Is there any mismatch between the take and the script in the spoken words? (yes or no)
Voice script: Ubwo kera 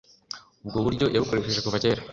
yes